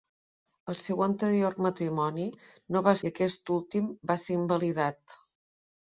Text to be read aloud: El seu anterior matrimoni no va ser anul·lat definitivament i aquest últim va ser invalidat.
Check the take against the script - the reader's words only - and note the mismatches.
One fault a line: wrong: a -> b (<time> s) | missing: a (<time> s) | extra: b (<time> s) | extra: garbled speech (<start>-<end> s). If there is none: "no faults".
missing: ser anul·lat definitivament (3.0 s)